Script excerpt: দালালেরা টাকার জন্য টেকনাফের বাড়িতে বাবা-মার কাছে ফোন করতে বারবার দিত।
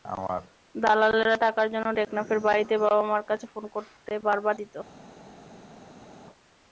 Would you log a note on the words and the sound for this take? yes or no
no